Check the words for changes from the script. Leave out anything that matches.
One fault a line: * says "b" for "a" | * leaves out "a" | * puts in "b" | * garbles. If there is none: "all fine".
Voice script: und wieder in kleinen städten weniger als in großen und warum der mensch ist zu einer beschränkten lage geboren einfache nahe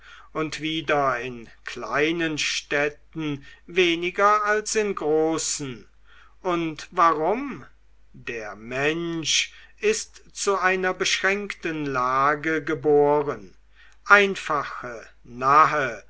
all fine